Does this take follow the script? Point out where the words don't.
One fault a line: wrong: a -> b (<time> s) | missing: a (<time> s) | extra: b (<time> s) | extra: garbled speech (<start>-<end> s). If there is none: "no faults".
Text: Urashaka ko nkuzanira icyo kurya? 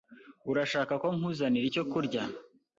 no faults